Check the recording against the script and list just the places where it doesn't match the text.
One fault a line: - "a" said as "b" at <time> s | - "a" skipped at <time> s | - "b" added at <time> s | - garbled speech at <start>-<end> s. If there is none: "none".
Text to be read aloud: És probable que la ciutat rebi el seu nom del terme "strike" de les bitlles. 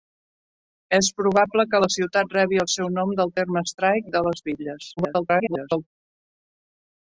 - garbled speech at 5.0-5.9 s